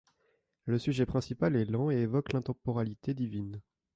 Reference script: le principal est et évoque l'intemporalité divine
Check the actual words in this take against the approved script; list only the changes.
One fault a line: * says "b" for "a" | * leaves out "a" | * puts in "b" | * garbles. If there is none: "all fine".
* puts in "sujet"
* puts in "lent"